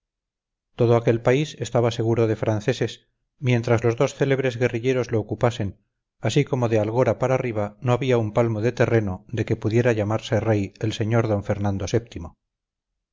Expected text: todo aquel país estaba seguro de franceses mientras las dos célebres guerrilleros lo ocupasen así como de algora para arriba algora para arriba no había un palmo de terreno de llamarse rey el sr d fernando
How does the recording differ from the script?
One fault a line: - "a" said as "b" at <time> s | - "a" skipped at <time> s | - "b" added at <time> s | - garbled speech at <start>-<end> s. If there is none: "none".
- "las" said as "los" at 3.8 s
- "algora para arriba" skipped at 7.8 s
- "que pudiera" added at 9.4 s